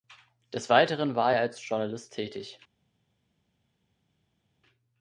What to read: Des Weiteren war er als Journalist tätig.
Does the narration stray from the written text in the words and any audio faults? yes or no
no